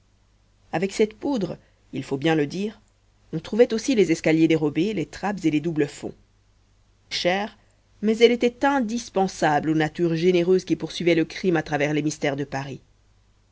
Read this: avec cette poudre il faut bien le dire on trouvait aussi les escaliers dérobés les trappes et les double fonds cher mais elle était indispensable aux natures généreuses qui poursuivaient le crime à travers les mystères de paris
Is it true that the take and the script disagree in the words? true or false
false